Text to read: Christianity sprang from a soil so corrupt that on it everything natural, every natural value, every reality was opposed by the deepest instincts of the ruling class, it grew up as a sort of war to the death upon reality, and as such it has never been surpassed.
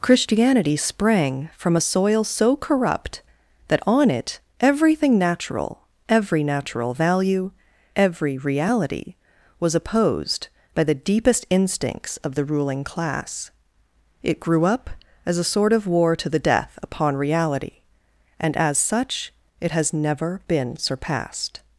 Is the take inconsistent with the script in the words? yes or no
no